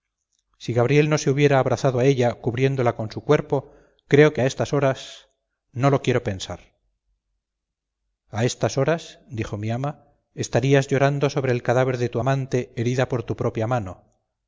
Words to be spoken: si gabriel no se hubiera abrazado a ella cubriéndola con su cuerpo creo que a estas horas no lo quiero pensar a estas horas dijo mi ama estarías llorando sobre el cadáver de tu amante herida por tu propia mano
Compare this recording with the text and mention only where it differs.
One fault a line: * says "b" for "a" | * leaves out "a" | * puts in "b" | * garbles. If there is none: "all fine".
all fine